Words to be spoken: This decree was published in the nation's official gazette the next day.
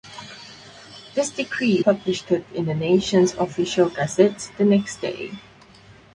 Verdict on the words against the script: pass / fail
fail